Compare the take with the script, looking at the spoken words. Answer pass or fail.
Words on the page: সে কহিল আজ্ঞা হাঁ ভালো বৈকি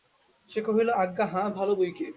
pass